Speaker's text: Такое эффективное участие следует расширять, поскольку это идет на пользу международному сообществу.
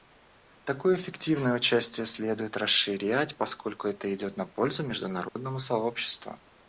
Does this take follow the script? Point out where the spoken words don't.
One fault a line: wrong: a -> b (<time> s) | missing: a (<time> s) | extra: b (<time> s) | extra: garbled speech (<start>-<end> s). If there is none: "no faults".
no faults